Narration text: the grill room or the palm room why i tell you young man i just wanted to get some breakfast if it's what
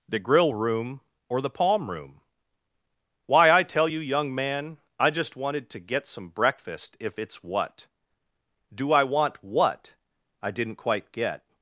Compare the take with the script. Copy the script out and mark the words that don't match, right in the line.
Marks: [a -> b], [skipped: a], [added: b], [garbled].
the grill room or the palm room why i tell you young man i just wanted to get some breakfast if it's what [added: do i want what i didn't quite get]